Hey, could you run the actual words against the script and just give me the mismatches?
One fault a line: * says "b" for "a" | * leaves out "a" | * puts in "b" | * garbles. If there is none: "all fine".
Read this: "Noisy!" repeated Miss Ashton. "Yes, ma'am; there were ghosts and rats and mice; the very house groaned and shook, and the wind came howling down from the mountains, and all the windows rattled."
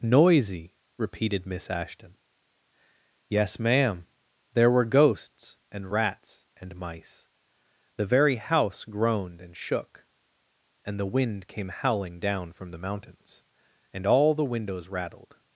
all fine